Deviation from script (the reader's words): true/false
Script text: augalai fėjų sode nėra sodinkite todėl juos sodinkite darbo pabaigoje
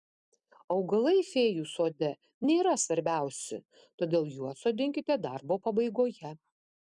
true